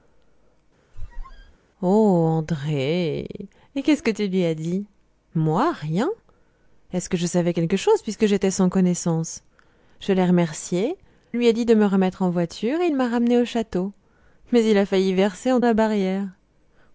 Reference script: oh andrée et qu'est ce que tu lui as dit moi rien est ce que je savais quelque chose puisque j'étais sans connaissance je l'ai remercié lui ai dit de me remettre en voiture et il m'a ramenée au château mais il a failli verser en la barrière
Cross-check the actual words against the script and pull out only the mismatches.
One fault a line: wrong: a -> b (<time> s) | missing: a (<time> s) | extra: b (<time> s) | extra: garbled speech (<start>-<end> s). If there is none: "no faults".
no faults